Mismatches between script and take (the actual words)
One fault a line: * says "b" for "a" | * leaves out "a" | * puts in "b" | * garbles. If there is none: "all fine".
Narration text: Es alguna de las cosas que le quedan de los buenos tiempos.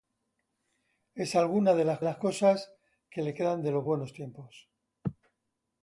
* puts in "las"